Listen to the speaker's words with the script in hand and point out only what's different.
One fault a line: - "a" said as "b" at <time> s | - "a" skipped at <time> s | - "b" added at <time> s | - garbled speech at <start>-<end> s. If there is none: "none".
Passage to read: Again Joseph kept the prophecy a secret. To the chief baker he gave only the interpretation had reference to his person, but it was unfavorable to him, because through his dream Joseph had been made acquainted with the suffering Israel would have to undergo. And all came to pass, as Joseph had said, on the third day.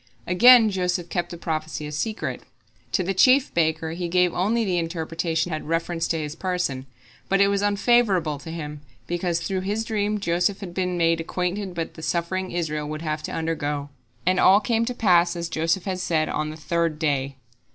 none